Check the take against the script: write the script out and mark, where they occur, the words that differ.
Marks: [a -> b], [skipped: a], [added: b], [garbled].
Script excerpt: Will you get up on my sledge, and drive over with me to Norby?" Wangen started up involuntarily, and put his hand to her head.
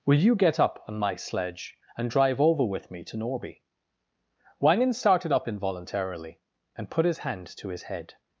Will you get up on my sledge, and drive over with me to Norby?" Wangen started up involuntarily, and put his hand to [her -> his] head.